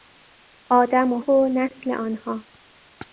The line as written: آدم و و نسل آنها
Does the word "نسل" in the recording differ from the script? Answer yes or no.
no